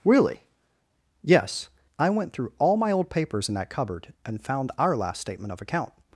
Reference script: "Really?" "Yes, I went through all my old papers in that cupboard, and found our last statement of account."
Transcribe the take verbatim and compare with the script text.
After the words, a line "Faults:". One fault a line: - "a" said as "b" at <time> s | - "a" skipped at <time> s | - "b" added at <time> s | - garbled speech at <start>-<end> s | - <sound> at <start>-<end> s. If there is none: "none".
"Really?" "Yes, I went through all my old papers in that cupboard, and found our last statement of account."
Faults:
none